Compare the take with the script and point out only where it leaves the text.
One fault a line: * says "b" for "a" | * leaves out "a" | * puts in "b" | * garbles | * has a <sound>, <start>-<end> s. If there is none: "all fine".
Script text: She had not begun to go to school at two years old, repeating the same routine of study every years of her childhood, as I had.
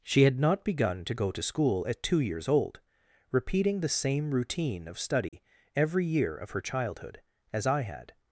* has a dropout, 5.3-5.3 s
* says "year" for "years"